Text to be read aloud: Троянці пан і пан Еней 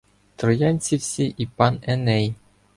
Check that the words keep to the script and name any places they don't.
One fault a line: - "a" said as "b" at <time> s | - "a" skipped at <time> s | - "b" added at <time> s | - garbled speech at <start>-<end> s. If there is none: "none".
- "пан" said as "всі" at 0.9 s